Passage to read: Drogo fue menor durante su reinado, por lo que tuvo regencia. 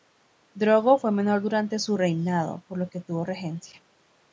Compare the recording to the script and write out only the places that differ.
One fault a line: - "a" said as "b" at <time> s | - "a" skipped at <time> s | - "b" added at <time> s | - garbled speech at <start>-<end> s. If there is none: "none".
none